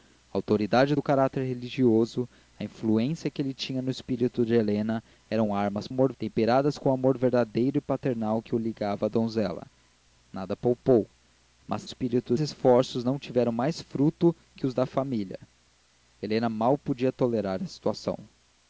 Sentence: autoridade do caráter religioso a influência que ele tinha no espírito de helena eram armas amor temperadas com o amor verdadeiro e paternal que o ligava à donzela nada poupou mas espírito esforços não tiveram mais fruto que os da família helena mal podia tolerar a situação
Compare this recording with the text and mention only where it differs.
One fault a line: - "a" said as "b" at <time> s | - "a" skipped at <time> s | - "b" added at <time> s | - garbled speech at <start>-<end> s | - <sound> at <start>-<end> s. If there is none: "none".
none